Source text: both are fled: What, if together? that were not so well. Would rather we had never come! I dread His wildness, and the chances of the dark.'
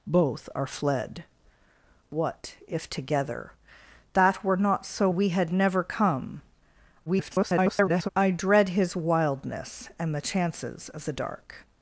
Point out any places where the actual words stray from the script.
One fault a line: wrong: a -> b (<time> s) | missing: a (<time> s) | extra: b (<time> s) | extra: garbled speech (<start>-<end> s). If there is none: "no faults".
missing: well Would rather (5.1 s)
extra: garbled speech (7.1-8.1 s)